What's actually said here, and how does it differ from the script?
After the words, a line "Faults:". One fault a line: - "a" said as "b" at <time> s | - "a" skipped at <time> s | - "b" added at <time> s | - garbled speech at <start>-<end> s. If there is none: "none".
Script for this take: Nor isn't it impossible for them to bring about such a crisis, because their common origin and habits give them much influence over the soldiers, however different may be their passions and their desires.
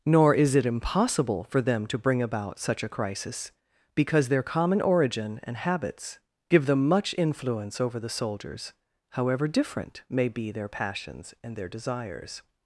Nor is it impossible for them to bring about such a crisis, because their common origin and habits give them much influence over the soldiers, however different may be their passions and their desires.
Faults:
- "isn't" said as "is" at 0.3 s